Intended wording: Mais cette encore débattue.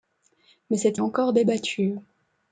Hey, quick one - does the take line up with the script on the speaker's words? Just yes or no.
yes